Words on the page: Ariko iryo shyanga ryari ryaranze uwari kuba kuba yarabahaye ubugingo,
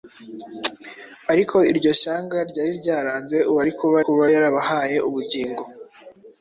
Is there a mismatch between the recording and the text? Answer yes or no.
no